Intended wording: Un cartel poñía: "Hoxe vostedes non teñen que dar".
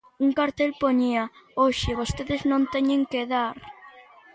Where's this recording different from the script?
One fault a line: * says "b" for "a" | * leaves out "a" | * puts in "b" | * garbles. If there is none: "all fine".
all fine